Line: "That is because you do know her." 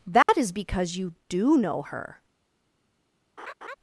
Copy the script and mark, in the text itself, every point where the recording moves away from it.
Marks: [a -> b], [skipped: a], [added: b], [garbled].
"That is because you do know her."